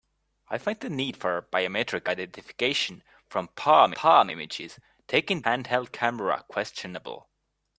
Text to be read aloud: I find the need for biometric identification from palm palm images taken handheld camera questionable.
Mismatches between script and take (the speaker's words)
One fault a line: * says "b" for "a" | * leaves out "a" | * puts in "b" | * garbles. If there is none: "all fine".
all fine